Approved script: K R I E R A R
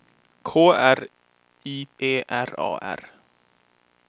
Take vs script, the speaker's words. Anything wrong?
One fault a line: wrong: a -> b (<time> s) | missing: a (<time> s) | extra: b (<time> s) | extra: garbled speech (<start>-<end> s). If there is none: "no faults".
no faults